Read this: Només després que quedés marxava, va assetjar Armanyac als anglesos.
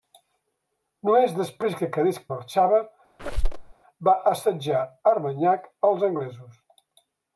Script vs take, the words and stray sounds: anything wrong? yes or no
yes